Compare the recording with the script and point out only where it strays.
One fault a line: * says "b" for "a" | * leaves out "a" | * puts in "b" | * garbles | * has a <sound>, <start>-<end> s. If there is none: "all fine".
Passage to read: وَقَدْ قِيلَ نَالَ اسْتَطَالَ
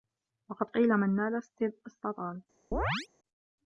* puts in "مَنْ"
* has a chirp, 2.7-3.1 s